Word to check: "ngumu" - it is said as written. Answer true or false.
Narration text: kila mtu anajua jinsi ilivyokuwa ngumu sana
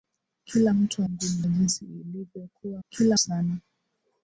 false